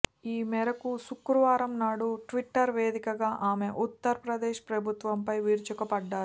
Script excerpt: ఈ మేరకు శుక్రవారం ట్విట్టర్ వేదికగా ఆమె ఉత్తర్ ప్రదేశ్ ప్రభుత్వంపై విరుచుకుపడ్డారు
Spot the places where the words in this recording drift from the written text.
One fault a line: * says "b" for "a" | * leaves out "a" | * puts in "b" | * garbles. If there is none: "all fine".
* puts in "నాడు"